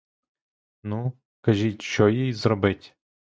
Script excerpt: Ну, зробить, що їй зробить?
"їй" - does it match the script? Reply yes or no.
yes